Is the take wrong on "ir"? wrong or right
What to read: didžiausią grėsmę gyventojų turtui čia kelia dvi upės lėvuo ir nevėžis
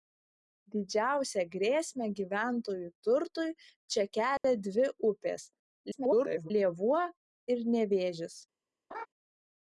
right